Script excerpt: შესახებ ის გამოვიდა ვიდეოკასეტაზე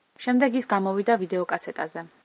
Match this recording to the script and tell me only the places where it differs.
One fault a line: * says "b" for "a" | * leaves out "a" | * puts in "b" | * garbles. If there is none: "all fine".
* says "შემდეგ" for "შესახებ"